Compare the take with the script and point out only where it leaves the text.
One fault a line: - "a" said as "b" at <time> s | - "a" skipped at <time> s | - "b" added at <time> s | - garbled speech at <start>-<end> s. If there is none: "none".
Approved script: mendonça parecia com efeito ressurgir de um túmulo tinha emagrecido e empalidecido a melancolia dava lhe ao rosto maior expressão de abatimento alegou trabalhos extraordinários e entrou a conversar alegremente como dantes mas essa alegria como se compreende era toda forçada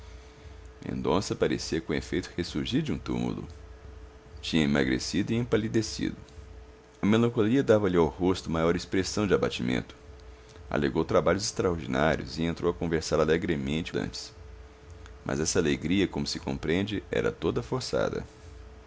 - "como" skipped at 13.9 s